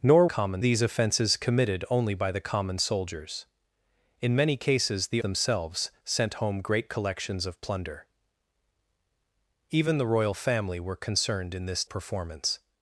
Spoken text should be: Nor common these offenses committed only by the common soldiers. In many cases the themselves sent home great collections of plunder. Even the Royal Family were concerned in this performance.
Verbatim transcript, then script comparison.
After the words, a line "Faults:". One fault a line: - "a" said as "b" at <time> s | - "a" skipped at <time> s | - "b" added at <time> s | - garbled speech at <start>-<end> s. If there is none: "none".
Nor common these offenses committed only by the common soldiers. In many cases the themselves sent home great collections of plunder. Even the Royal Family were concerned in this performance.
Faults:
none